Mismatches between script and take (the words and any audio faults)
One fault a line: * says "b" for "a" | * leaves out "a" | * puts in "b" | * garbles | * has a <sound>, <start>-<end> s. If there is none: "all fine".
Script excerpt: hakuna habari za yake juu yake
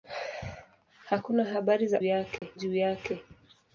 * has a dropout, 2.4-2.4 s